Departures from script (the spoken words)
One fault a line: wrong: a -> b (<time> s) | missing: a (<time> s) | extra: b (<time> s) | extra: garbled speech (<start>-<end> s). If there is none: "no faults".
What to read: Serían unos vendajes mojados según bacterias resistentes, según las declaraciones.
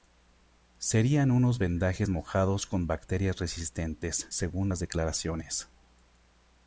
wrong: según -> con (2.6 s)